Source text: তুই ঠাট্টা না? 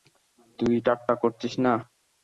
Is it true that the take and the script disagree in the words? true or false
true